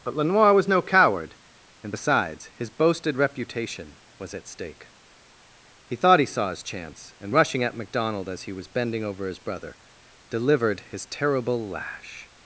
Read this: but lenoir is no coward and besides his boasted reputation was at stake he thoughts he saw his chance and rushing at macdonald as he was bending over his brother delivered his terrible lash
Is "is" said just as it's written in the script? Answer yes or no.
no